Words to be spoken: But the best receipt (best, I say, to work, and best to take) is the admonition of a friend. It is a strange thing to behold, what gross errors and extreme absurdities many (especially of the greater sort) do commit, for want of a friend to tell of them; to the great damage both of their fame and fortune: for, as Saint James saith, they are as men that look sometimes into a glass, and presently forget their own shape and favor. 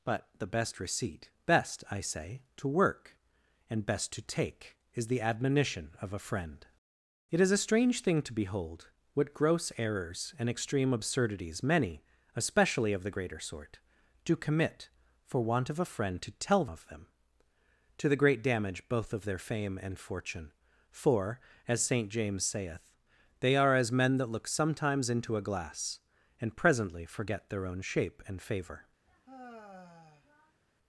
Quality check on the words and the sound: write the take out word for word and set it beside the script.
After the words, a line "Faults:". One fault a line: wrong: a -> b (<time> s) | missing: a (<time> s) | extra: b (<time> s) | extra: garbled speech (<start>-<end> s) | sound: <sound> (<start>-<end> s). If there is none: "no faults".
But the best receipt (best, I say, to work, and best to take) is the admonition of a friend. It is a strange thing to behold, what gross errors and extreme absurdities many (especially of the greater sort) do commit, for want of a friend to tell of them; to the great damage both of their fame and fortune: for, as Saint James saith, they are as men that look sometimes into a glass, and presently forget their own shape and favor.
Faults:
sound: sigh (29.1-30.6 s)